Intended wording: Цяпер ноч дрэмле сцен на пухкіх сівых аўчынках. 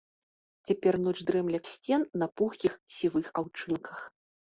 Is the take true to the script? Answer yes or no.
yes